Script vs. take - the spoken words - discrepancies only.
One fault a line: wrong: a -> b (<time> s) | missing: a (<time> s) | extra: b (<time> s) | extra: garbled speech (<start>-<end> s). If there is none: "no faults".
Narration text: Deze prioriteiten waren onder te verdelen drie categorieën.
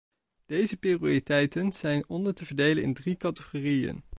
wrong: waren -> zijn (1.7 s)
extra: in (2.8 s)